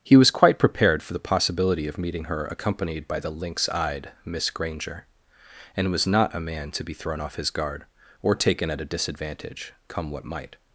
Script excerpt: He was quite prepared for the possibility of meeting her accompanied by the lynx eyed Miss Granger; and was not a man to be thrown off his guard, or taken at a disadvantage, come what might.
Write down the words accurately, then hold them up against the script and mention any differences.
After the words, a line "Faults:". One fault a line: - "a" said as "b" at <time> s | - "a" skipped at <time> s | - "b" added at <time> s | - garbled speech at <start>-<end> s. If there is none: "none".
He was quite prepared for the possibility of meeting her accompanied by the lynx eyed Miss Granger; and was not a man to be thrown off his guard, or taken at a disadvantage, come what might.
Faults:
none